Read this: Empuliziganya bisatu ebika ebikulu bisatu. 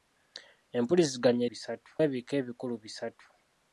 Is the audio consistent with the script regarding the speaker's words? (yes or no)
yes